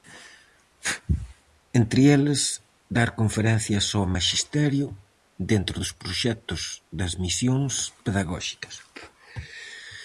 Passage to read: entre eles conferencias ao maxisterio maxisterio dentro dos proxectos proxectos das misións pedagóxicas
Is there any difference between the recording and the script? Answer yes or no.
yes